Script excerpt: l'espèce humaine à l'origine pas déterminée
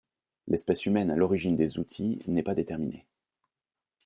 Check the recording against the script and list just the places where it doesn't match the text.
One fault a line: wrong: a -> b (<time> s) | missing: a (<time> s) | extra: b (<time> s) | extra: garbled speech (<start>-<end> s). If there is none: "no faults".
extra: des outils n'est (1.6 s)